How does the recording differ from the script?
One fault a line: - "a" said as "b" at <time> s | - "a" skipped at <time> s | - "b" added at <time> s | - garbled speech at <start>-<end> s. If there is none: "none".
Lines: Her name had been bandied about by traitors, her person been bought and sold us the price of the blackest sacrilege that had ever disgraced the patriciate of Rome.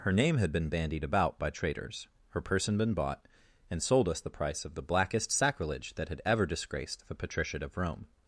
none